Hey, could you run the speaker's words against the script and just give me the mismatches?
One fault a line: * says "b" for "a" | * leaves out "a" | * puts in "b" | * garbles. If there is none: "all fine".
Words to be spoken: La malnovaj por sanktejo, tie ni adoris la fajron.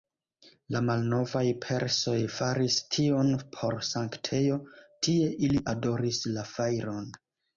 * puts in "persoj faris tion"
* says "ili" for "ni"